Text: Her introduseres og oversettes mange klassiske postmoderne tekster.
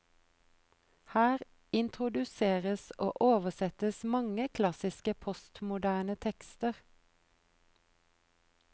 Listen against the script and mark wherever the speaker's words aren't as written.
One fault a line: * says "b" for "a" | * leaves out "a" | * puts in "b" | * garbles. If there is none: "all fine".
all fine